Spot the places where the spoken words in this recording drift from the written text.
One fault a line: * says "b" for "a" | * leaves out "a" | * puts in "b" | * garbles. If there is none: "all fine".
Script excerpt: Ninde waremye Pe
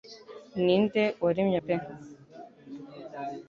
all fine